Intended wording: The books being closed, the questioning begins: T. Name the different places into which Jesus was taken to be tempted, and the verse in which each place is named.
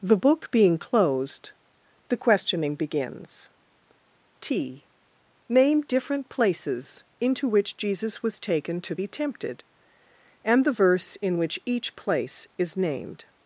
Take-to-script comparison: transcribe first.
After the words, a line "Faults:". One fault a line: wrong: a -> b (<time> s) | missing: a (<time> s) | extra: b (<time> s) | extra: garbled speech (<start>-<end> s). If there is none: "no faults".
The book being closed, the questioning begins: T. Name different places into which Jesus was taken to be tempted, and the verse in which each place is named.
Faults:
wrong: books -> book (0.2 s)
missing: the (5.8 s)